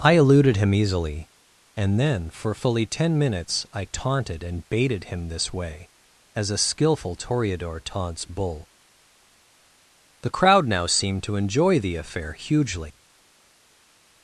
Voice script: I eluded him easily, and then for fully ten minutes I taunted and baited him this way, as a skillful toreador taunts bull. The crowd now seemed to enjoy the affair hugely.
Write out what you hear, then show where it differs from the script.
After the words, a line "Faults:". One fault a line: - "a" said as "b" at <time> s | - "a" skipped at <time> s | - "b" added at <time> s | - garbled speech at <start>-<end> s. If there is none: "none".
I eluded him easily, and then for fully ten minutes I taunted and baited him this way, as a skillful toreador taunts bull. The crowd now seemed to enjoy the affair hugely.
Faults:
none